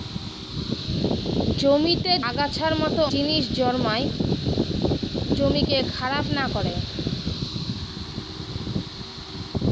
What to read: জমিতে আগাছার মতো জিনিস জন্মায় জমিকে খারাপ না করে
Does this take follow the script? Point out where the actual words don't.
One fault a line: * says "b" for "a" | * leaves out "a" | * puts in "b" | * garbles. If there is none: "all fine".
all fine